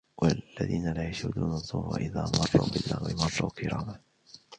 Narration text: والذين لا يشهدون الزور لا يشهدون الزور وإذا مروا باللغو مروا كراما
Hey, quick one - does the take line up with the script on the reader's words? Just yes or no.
no